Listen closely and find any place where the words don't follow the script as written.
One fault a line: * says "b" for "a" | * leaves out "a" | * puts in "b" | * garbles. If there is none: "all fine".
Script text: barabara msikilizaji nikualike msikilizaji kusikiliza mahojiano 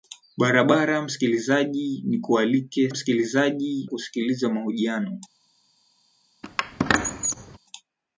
all fine